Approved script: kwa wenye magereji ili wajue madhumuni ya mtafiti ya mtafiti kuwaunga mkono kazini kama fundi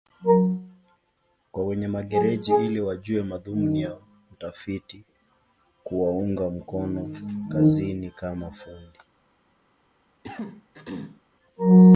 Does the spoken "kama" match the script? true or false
true